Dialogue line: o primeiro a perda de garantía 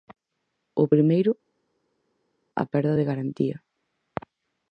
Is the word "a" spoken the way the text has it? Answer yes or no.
yes